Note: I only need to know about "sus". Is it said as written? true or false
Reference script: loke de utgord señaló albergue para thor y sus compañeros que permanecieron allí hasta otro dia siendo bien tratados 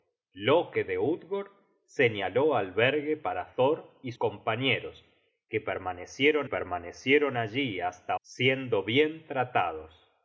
false